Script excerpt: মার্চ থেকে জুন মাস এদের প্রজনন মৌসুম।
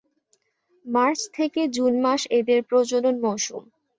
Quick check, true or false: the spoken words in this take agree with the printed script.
true